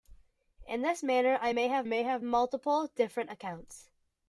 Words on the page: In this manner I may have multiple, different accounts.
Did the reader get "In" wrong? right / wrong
right